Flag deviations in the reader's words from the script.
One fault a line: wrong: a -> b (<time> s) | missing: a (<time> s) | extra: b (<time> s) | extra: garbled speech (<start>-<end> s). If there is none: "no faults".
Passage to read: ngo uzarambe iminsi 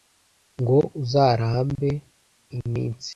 no faults